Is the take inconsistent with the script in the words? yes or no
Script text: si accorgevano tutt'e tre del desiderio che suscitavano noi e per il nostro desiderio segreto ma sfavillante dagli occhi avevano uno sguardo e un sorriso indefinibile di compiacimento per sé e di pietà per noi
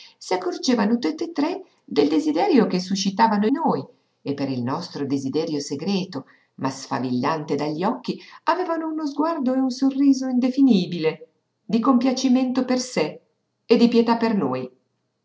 no